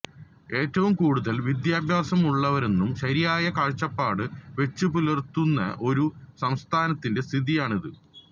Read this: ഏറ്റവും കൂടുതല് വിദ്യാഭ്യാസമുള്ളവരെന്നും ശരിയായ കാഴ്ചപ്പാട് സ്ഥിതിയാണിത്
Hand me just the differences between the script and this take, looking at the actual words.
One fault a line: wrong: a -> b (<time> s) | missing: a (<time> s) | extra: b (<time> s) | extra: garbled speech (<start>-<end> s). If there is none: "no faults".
extra: വെച്ചുപുലര്ത്തുന്ന ഒരു സംസ്ഥാനത്തിന്റെ (4.6 s)